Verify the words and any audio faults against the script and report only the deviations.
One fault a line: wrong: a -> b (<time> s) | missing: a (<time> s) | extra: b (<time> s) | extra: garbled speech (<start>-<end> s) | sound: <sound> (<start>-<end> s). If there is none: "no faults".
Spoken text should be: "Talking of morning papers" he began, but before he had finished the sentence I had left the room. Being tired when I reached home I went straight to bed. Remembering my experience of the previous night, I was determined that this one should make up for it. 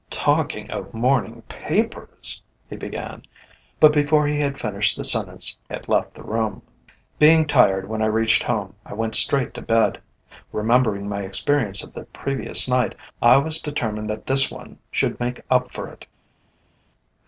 missing: I (5.6 s)